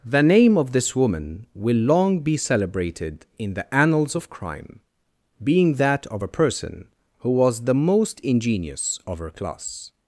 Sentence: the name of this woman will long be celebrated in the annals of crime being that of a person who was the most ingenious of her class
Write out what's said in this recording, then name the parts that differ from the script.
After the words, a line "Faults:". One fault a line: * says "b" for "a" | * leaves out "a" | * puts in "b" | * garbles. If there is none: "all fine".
the name of this woman will long be celebrated in the annals of crime being that of a person who was the most ingenious of her class
Faults:
all fine